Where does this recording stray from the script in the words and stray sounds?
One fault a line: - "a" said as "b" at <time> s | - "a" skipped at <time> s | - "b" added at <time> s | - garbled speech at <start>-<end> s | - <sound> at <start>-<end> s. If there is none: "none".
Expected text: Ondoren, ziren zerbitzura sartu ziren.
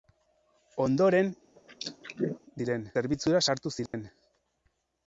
- throat clearing at 1.6-2.4 s
- dropout at 3.9-3.9 s